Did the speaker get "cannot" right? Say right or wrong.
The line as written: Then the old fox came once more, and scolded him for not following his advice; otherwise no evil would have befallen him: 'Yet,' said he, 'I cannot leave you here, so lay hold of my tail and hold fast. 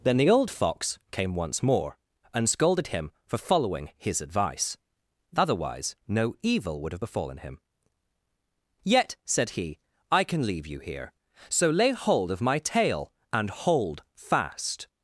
wrong